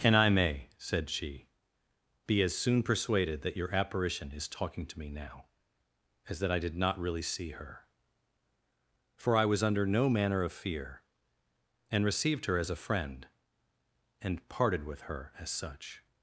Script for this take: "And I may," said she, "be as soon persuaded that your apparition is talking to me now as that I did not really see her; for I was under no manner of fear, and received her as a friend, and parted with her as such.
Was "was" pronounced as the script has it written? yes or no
yes